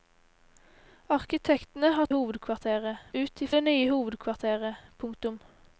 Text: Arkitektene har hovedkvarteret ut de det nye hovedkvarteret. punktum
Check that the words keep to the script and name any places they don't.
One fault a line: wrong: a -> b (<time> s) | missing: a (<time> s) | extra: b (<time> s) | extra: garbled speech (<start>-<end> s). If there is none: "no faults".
no faults